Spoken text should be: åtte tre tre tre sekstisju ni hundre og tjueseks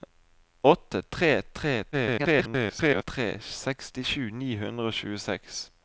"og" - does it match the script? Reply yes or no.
yes